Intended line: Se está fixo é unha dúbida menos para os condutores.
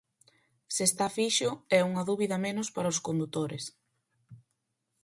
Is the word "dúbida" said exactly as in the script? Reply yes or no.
yes